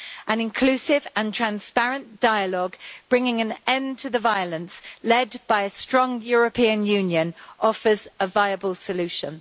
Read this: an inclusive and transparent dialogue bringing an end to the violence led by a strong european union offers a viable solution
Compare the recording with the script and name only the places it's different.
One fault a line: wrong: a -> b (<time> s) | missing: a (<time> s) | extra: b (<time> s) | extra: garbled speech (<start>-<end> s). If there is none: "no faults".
no faults